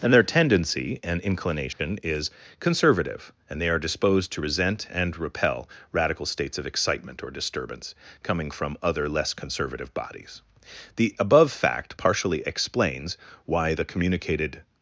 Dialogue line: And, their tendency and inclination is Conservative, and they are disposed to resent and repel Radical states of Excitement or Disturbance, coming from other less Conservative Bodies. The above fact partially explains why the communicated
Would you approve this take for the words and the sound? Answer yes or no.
no